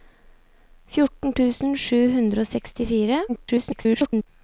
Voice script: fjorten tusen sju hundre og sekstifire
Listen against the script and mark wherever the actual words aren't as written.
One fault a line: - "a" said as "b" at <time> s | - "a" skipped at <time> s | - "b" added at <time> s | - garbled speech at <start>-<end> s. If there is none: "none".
- garbled speech at 3.3-4.3 s